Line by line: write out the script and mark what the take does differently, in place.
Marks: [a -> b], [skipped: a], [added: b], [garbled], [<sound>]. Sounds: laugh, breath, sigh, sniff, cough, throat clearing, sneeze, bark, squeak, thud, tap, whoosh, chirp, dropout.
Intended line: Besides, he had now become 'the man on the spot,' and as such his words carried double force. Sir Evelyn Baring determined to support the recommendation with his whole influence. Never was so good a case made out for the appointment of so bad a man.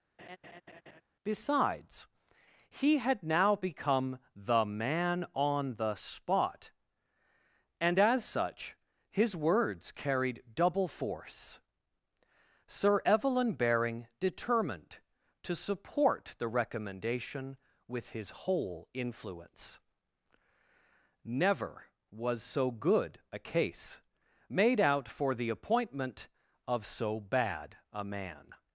[laugh] Besides, he had now become 'the man on the spot,' and as such his words carried double force. Sir Evelyn Baring determined to support the recommendation with his whole influence. Never was so good a case made out for the appointment of so bad a man.